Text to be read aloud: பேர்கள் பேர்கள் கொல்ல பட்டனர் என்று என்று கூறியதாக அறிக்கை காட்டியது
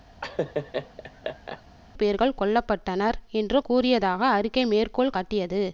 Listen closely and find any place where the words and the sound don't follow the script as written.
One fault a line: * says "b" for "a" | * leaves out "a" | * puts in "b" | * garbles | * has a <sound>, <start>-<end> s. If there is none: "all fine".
* has a laugh, 0.2-1.6 s
* leaves out "பேர்கள்"
* leaves out "என்று"
* puts in "மேற்கோள்"